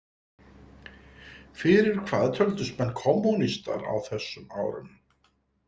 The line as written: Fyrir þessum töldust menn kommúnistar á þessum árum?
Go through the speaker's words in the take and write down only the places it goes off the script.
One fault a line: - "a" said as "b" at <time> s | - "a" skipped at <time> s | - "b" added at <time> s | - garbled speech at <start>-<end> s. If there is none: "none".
- "þessum" said as "hvað" at 2.1 s